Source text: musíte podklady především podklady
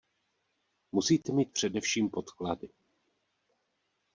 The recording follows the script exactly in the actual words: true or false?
false